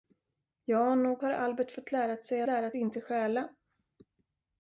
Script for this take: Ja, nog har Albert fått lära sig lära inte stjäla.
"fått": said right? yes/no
yes